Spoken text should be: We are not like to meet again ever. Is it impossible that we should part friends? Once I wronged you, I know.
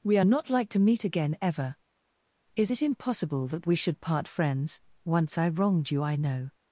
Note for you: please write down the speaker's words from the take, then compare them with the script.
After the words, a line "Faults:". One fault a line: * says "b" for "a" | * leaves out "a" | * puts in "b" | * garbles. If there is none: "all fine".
We are not like to meet again ever. Is it impossible that we should part friends? Once I wronged you, I know.
Faults:
all fine